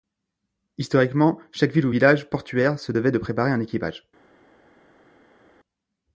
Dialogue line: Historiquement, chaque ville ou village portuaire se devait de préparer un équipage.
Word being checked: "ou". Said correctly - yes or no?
yes